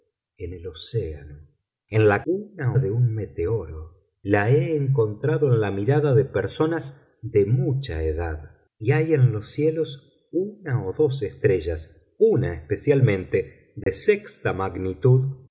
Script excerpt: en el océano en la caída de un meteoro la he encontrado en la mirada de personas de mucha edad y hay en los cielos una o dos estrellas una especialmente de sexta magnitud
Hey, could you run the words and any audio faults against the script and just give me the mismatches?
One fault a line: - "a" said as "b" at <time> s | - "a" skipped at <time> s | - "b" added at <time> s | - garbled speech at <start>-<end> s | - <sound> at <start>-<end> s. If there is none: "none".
- "caída" said as "una" at 2.2 s
- dropout at 13.8-13.9 s